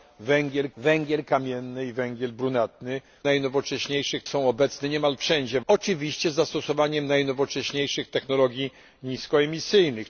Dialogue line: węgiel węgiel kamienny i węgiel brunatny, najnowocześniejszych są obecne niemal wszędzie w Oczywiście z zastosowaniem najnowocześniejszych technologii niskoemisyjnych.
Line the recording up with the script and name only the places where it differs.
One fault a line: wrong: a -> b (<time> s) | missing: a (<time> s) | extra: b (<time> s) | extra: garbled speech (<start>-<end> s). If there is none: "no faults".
no faults